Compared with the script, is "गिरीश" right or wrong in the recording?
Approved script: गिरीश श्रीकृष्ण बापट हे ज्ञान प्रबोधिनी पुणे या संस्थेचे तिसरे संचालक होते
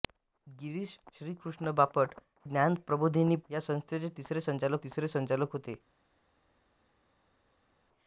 right